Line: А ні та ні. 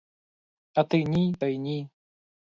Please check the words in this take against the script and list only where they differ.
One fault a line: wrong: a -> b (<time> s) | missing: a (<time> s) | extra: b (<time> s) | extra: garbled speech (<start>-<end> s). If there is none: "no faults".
extra: ти (0.8 s)
extra: й (1.5 s)